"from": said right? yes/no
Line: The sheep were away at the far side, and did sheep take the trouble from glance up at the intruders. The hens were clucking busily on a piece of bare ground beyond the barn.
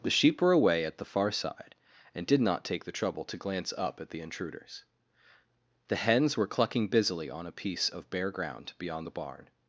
no